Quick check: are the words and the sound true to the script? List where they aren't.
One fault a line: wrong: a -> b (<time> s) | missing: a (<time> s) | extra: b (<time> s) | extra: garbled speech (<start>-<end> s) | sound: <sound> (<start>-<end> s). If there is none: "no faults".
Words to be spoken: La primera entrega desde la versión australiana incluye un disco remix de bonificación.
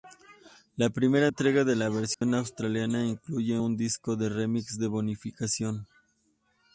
wrong: desde -> de (1.6 s)
sound: dropout (2.1-2.2 s)
extra: de (4.1 s)